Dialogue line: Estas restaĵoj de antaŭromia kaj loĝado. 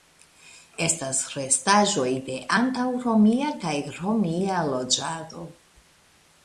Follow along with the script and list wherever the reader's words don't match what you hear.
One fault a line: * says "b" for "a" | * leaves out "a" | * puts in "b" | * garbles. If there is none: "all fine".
* puts in "romia"